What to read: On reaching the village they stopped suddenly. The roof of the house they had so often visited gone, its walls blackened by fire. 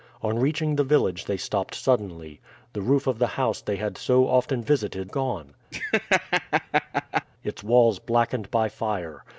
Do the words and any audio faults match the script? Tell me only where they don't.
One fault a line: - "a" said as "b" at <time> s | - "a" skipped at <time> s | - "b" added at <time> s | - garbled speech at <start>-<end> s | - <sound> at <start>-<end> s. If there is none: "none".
- laugh at 5.7-7.2 s